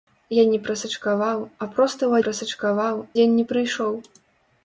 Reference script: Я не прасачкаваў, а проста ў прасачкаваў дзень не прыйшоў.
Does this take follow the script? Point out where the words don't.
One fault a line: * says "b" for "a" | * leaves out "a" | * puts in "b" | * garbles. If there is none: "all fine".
all fine